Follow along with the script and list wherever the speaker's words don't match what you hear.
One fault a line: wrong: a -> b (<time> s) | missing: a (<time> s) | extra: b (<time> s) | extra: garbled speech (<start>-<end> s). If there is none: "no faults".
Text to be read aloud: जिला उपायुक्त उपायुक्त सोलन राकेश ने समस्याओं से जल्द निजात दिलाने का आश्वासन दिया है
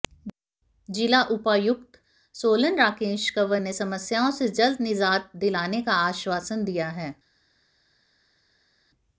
missing: उपायुक्त (2.0 s)
extra: कंवर (3.3 s)